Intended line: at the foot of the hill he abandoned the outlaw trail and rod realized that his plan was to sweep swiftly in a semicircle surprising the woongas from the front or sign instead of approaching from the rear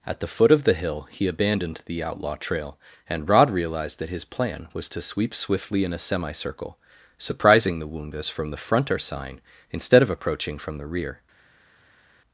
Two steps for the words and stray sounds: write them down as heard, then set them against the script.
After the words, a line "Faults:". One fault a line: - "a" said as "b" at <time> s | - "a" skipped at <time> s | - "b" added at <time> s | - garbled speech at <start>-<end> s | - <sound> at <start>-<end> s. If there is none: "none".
at the foot of the hill he abandoned the outlaw trail and rod realized that his plan was to sweep swiftly in a semicircle surprising the woongas from the front or sign instead of approaching from the rear
Faults:
none